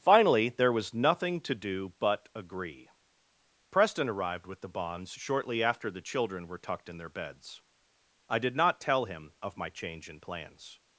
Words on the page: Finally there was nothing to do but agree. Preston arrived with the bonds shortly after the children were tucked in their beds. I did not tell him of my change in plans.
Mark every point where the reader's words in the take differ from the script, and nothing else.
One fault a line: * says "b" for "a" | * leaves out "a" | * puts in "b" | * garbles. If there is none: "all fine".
all fine